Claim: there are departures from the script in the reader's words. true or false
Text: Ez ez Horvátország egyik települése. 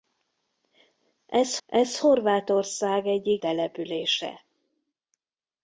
false